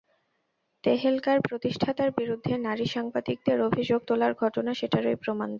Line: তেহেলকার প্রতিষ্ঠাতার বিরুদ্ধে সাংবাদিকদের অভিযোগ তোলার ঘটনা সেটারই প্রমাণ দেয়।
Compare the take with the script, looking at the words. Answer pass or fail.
fail